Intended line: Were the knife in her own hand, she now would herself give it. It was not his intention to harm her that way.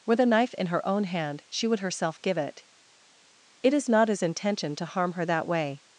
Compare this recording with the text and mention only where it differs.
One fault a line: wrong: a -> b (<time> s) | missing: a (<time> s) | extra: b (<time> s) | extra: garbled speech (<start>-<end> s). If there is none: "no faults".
missing: now (1.7 s)
wrong: was -> is (3.7 s)